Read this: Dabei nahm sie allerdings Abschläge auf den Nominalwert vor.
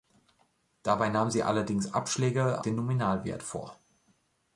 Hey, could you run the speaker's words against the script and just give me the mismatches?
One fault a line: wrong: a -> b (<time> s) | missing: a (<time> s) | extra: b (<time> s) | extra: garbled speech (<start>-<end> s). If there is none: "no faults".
missing: auf (2.6 s)